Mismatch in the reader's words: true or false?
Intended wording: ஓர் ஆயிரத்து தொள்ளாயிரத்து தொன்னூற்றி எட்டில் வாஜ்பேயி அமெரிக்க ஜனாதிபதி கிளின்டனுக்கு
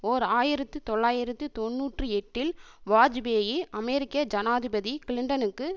false